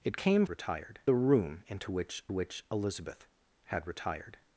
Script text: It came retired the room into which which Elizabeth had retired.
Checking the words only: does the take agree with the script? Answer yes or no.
yes